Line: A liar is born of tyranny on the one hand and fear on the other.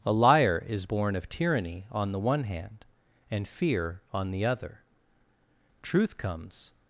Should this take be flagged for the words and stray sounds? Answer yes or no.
yes